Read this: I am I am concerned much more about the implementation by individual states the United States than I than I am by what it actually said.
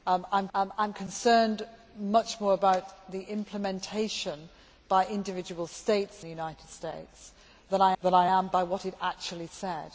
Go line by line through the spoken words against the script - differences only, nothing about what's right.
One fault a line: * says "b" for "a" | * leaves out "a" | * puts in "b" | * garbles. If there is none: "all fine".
all fine